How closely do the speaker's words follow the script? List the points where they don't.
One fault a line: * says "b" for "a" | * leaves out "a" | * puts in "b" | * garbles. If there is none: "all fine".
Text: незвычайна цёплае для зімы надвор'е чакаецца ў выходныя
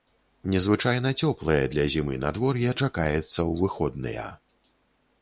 all fine